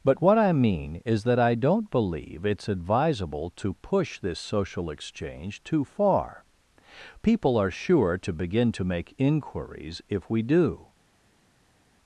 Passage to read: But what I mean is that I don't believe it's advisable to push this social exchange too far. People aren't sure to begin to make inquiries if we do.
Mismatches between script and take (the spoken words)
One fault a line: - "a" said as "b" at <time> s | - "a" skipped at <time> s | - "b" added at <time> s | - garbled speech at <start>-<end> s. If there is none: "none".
- "aren't" said as "are" at 7.6 s